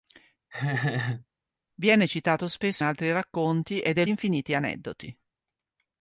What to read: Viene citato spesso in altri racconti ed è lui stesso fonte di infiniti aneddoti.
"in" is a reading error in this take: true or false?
true